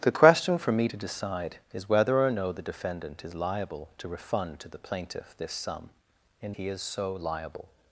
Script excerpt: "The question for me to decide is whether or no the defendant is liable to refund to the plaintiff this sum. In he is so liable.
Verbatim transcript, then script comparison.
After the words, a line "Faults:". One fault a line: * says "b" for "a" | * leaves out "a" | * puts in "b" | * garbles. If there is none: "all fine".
"The question for me to decide is whether or no the defendant is liable to refund to the plaintiff this sum. In he is so liable.
Faults:
all fine